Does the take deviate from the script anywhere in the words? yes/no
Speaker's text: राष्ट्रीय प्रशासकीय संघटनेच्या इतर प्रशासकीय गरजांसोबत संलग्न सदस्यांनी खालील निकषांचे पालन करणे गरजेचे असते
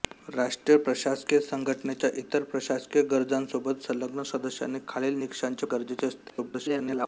yes